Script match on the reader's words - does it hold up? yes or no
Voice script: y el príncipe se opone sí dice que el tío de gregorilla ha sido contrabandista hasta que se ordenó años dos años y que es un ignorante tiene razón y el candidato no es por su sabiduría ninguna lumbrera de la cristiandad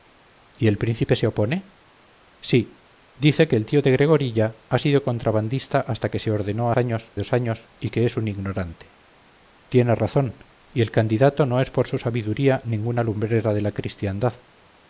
yes